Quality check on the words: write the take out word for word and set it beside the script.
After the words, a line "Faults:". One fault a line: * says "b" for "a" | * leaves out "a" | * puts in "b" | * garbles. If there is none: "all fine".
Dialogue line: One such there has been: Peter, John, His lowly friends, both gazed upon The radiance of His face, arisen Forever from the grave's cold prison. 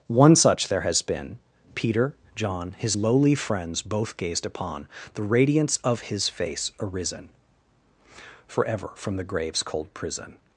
One such there has been: Peter, John, His lowly friends, both gazed upon The radiance of His face, arisen Forever from the grave's cold prison.
Faults:
all fine